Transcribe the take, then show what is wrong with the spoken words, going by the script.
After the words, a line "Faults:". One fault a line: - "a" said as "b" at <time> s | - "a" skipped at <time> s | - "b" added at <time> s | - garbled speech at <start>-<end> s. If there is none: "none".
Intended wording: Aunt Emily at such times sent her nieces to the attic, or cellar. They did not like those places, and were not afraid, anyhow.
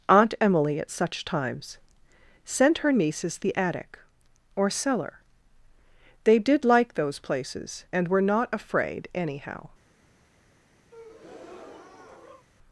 Aunt Emily at such times sent her nieces the attic, or cellar. They did like those places, and were not afraid, anyhow.
Faults:
- "to" skipped at 3.4 s
- "not" skipped at 6.6 s